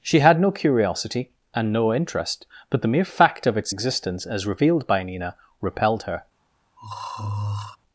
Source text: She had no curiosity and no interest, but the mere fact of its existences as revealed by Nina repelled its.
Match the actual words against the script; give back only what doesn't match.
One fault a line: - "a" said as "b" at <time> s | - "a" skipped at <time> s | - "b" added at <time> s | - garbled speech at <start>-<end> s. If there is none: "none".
- "existences" said as "existence" at 3.7 s
- "its" said as "her" at 6.0 s